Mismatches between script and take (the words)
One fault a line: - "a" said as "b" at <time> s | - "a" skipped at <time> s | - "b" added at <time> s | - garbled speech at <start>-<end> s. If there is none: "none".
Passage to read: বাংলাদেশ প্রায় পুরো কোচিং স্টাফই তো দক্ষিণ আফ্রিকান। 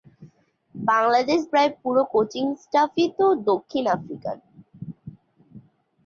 none